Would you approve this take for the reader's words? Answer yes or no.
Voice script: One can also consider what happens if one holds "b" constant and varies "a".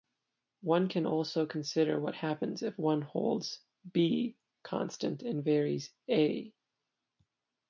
yes